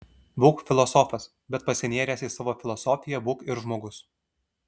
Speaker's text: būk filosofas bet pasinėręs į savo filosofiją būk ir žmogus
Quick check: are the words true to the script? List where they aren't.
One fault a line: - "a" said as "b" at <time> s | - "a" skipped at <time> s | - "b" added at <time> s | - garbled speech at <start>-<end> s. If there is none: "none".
none